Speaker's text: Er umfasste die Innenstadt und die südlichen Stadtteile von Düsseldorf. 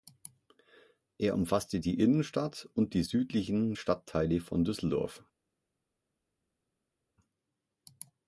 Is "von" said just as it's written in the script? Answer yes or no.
yes